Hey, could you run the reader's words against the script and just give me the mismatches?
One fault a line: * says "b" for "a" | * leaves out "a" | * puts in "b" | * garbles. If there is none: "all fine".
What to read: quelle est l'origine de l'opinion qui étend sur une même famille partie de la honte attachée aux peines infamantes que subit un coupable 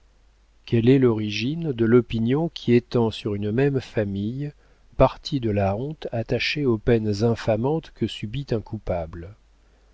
all fine